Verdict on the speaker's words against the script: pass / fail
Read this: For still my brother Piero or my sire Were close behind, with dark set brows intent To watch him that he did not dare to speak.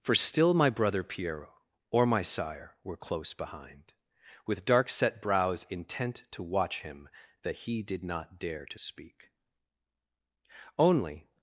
fail